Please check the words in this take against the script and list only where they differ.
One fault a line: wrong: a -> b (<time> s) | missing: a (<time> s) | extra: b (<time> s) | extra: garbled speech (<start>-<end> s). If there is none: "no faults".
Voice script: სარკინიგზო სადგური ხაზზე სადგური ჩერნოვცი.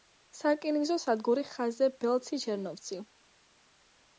wrong: სადგური -> ბელცი (2.1 s)